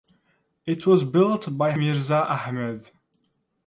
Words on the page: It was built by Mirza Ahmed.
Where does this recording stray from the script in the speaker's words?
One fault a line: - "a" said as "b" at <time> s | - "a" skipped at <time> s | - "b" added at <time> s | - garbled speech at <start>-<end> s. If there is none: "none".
none